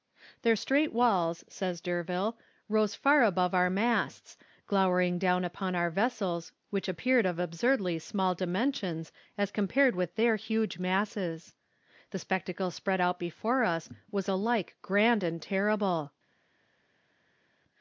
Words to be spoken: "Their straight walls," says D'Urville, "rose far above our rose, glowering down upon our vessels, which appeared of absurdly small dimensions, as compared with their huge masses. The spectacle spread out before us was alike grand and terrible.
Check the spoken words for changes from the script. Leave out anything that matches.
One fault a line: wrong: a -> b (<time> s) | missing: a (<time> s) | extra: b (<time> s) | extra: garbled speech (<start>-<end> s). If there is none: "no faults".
wrong: rose -> masts (3.7 s)